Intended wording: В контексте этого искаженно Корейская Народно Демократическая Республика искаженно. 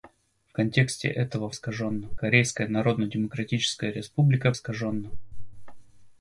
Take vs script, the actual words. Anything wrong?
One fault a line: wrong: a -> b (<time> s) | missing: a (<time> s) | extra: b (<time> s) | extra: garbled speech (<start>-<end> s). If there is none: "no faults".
no faults